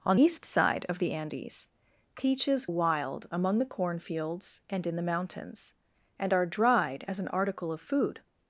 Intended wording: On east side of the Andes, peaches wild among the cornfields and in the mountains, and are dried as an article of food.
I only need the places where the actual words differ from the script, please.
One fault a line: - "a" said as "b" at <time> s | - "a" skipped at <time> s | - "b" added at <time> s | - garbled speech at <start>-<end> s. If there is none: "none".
none